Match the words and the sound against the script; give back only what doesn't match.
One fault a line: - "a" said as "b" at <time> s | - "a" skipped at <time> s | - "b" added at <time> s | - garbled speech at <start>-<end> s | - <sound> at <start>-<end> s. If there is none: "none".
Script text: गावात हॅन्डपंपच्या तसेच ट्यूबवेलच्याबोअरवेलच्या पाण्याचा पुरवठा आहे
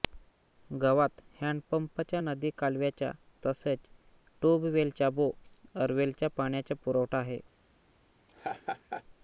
- "नदी कालव्याच्या" added at 2.2 s
- laugh at 8.3-9.0 s